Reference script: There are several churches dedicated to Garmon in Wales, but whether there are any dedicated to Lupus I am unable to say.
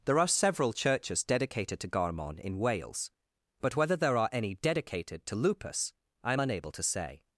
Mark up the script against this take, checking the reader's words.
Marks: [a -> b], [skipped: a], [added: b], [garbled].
There are several churches dedicated to Garmon in Wales, but whether there are any dedicated to Lupus I am unable to say.